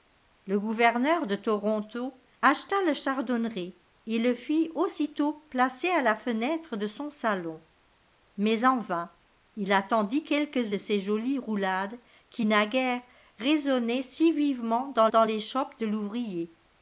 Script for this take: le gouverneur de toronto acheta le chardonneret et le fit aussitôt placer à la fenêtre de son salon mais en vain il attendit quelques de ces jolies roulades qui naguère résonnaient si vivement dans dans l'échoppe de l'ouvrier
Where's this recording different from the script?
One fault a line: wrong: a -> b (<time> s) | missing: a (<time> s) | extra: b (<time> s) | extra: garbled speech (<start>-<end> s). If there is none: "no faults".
no faults